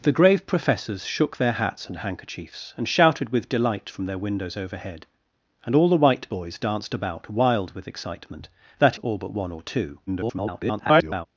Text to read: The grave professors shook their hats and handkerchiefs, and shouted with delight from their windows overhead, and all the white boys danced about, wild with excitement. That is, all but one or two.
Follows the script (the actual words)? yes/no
no